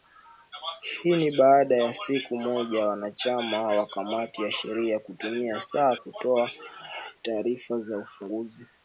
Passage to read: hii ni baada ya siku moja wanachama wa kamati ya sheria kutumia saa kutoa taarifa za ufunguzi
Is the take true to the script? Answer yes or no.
yes